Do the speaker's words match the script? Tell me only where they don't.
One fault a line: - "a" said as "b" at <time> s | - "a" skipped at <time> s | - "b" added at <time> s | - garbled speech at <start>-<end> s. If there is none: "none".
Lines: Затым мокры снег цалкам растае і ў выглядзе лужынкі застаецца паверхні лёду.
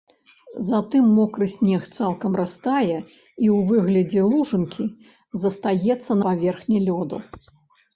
none